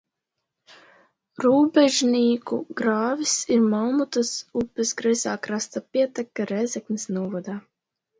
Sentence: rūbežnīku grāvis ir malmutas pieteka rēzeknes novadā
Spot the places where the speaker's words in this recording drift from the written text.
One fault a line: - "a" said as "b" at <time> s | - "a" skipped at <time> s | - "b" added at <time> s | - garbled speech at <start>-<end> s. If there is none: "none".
- "upes kreisā krasta" added at 4.6 s